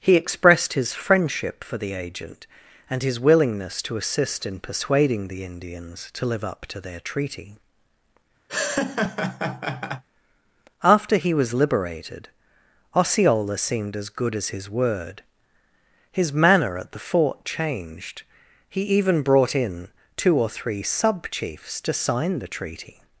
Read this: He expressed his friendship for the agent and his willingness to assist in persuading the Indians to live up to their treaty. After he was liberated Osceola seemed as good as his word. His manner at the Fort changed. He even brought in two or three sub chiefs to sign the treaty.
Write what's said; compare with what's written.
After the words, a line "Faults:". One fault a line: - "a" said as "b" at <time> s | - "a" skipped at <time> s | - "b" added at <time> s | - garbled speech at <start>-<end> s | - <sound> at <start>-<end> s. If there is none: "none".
He expressed his friendship for the agent and his willingness to assist in persuading the Indians to live up to their treaty. After he was liberated Osceola seemed as good as his word. His manner at the Fort changed. He even brought in two or three sub chiefs to sign the treaty.
Faults:
- laugh at 8.5-10.0 s